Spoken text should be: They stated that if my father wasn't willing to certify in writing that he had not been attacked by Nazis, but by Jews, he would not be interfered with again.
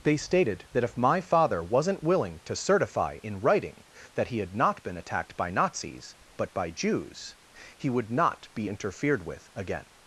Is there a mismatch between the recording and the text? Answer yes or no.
no